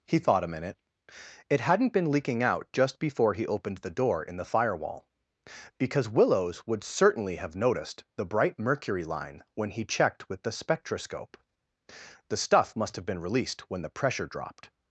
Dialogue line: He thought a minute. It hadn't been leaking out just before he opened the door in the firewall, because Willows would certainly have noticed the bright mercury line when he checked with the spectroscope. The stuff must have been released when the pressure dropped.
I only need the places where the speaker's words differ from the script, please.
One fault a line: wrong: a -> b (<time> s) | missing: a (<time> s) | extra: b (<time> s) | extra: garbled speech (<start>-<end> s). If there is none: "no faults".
no faults